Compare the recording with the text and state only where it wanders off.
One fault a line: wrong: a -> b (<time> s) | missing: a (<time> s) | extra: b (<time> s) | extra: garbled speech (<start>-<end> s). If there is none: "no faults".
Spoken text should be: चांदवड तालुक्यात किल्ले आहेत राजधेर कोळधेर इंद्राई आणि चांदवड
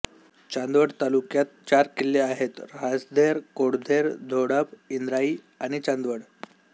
extra: चार (1.7 s)
extra: धोडप (4.3 s)